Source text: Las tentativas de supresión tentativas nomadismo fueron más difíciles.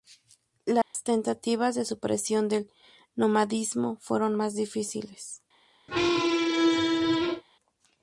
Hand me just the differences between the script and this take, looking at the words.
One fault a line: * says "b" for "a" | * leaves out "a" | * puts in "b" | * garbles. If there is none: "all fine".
* says "del" for "tentativas"